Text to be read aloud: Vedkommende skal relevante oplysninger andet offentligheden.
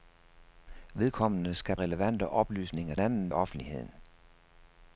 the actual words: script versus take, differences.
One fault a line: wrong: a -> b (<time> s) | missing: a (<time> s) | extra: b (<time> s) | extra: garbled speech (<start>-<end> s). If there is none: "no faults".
no faults